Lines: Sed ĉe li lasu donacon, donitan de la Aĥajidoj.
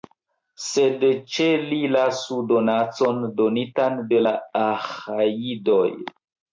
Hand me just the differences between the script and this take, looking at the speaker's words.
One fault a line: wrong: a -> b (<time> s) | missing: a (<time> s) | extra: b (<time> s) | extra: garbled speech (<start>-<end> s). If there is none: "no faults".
no faults